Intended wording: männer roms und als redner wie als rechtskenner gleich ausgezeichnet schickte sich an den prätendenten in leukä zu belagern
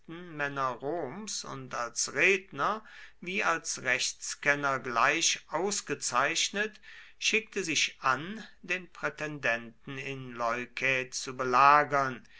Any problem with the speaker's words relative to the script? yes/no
no